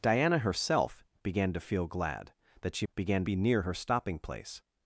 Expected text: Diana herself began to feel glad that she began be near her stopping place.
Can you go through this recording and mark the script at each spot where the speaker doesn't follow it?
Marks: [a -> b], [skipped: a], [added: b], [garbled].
Diana herself began to feel glad that she began be near her stopping place.